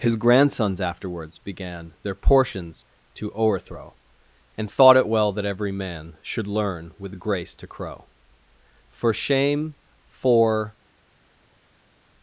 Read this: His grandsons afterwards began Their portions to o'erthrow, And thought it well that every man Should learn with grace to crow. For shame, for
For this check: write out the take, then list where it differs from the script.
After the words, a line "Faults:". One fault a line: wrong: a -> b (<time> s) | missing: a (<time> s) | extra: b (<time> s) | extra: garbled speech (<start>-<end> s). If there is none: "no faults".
His grandsons afterwards began Their portions to o'erthrow, And thought it well that every man Should learn with grace to crow. For shame, for
Faults:
no faults